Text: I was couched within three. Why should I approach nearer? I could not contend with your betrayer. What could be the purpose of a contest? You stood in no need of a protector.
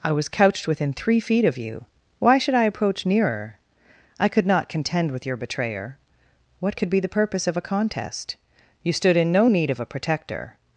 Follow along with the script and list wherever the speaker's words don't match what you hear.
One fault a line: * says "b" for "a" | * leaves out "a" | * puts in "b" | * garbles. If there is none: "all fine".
* puts in "feet of you"